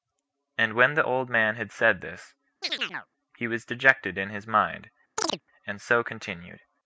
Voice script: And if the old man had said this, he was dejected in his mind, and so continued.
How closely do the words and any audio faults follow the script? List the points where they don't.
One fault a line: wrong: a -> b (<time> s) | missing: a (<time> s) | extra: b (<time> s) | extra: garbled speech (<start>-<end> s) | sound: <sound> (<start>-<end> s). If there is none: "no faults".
wrong: if -> when (0.7 s)
sound: chirp (2.6-3.1 s)
sound: chirp (5.2-5.4 s)